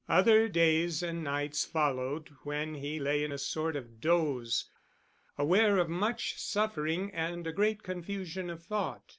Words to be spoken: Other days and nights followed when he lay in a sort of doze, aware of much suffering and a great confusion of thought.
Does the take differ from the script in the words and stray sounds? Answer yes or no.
no